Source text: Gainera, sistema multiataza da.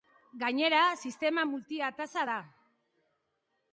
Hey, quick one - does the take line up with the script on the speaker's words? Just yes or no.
yes